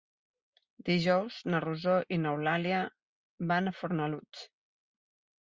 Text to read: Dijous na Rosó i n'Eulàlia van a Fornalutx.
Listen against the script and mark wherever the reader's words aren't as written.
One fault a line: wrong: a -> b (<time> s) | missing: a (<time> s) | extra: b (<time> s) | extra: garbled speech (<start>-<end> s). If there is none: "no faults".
no faults